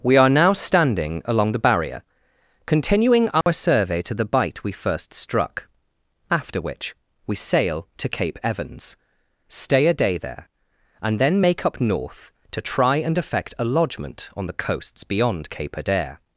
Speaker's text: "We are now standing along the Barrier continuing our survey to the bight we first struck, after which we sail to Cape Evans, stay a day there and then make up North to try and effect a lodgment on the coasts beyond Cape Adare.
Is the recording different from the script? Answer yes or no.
no